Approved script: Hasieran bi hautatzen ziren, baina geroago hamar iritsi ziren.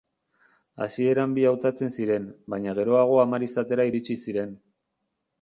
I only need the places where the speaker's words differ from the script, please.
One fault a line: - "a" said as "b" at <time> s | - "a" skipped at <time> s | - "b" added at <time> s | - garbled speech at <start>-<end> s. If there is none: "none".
- "izatera" added at 3.5 s